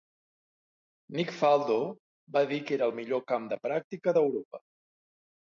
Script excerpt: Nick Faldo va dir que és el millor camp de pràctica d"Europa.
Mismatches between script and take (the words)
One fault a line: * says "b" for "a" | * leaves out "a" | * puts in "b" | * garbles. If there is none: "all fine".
* says "era" for "és"